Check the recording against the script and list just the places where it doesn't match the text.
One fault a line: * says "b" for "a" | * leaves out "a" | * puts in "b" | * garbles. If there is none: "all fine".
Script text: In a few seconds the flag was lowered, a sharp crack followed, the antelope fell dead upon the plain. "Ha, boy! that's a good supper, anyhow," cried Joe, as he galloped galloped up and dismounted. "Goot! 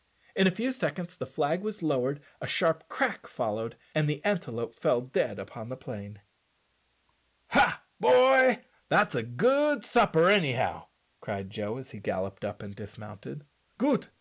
* puts in "and"
* leaves out "galloped"